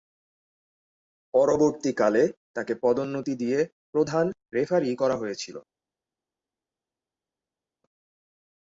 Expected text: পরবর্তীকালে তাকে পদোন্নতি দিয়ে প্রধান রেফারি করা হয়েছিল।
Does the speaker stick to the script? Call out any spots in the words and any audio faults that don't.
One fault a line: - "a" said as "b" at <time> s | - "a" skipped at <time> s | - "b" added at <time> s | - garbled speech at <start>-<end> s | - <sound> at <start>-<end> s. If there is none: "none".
none